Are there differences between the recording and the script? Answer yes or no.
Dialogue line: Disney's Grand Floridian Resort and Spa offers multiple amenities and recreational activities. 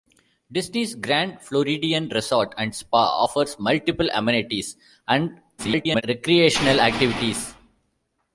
yes